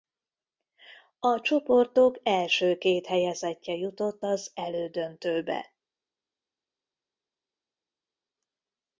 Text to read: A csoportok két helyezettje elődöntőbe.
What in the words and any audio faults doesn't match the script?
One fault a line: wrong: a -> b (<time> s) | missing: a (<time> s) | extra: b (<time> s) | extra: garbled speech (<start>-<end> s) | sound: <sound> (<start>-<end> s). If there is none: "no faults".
extra: első (2.2 s)
extra: jutott az (3.8 s)